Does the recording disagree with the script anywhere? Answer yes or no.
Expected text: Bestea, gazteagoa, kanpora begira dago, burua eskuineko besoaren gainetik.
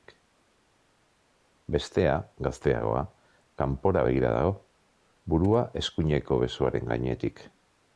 no